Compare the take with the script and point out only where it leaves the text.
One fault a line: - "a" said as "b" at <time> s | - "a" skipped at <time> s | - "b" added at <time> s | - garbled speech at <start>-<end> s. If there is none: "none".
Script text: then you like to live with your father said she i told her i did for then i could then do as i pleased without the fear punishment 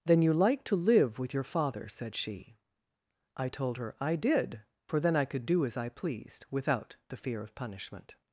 - "then" skipped at 5.4 s
- "of" added at 7.4 s